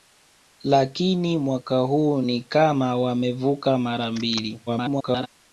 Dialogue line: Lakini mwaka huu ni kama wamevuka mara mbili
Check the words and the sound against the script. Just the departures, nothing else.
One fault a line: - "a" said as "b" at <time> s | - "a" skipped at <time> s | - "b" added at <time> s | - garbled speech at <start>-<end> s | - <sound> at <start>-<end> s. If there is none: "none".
- garbled speech at 4.7-5.3 s